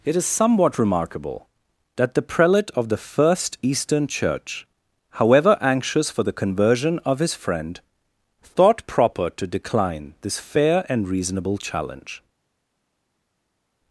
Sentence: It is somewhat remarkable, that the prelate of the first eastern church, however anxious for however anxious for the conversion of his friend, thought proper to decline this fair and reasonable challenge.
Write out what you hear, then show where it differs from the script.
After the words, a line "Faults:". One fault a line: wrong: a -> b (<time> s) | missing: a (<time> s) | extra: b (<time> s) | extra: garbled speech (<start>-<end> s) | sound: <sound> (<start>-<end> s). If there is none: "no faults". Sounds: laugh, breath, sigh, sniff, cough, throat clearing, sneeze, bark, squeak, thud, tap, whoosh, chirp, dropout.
It is somewhat remarkable, that the prelate of the first eastern church, however anxious for the conversion of his friend, thought proper to decline this fair and reasonable challenge.
Faults:
missing: however anxious for (6.2 s)